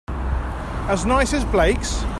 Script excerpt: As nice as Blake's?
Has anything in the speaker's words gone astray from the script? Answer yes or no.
no